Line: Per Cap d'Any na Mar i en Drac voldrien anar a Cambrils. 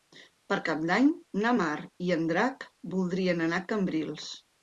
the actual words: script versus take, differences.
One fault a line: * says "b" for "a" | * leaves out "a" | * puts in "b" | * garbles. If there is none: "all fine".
all fine